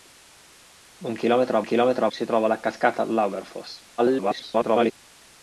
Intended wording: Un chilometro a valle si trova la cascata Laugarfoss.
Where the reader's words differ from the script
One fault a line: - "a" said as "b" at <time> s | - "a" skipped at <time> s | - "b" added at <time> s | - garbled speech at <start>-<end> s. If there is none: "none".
- "valle" said as "chilometro" at 1.6 s
- garbled speech at 4.0-4.9 s